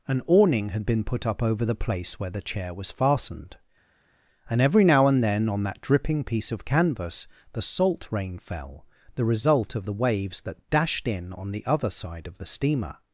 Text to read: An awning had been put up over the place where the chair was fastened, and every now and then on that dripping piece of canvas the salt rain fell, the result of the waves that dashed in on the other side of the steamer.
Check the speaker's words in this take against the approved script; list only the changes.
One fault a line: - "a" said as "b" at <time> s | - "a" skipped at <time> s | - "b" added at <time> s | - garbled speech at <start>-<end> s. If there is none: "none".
none